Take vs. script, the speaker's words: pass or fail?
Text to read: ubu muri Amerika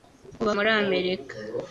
pass